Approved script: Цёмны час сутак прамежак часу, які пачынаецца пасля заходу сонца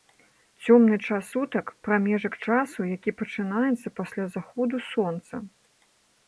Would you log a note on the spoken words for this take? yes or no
no